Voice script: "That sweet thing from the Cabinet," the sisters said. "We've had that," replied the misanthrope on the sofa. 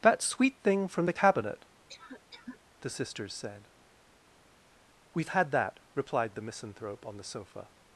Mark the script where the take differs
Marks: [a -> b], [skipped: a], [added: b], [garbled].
"That sweet thing from the Cabinet," the sisters said. "We've had that," replied the misanthrope on the sofa.